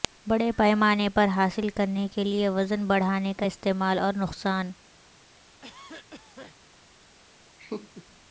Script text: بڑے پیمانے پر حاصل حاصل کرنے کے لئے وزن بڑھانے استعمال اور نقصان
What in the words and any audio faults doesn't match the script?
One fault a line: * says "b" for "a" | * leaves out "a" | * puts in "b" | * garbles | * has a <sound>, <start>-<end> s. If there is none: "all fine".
* leaves out "حاصل"
* puts in "کا"
* has a cough, 5.3-6.6 s
* has a laugh, 7.6-8.1 s